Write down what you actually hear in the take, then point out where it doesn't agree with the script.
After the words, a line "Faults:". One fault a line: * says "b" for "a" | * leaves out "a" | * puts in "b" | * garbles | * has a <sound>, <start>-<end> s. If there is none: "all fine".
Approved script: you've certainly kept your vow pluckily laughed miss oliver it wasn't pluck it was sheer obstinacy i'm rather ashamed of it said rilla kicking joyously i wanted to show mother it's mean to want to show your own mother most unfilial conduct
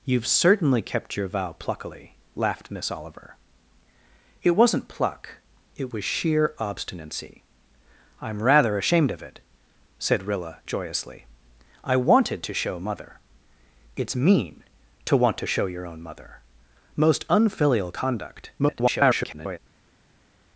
you've certainly kept your vow pluckily laughed miss oliver it wasn't pluck it was sheer obstinacy i'm rather ashamed of it said rilla joyously i wanted to show mother it's mean to want to show your own mother most unfilial conduct [garbled]
Faults:
* leaves out "kicking"
* garbles